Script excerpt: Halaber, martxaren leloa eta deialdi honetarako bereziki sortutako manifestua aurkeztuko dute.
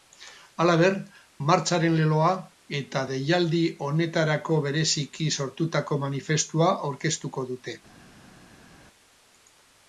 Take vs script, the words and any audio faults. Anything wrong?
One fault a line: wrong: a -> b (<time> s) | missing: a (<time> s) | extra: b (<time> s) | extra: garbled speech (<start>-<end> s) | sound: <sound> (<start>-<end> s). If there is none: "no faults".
no faults